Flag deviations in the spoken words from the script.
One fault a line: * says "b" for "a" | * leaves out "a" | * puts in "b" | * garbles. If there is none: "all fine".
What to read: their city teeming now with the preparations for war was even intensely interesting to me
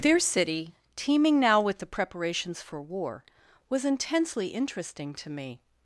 * leaves out "even"